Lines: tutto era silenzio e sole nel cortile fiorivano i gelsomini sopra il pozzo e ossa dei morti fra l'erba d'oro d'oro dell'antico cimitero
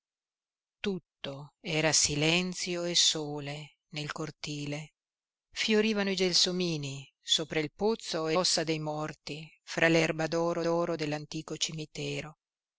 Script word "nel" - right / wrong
right